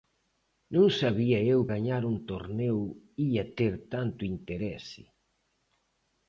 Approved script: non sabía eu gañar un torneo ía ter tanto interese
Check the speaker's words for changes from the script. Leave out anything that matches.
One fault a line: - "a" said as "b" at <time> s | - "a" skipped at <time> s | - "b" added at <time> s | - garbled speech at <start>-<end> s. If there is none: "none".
none